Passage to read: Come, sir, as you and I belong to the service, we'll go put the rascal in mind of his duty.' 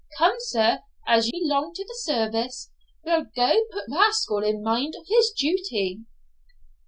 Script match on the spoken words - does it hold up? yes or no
no